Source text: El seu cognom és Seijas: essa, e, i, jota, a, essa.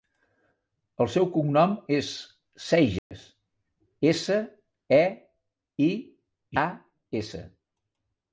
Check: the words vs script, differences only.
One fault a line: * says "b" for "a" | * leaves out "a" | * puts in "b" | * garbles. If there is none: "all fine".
* leaves out "jota"